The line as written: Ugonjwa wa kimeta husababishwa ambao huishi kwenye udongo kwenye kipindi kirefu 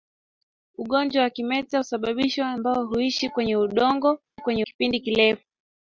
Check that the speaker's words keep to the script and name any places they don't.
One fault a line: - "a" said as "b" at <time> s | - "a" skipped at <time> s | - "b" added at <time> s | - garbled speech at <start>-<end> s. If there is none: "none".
none